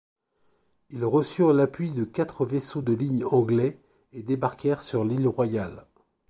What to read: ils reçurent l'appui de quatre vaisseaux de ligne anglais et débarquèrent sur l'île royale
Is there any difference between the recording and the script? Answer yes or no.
no